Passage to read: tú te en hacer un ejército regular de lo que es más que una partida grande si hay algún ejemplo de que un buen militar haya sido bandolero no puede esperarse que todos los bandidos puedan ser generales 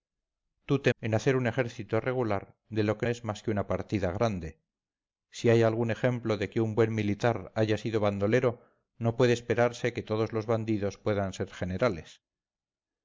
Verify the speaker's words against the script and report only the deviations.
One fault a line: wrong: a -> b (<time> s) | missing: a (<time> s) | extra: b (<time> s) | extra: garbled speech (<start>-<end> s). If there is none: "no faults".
no faults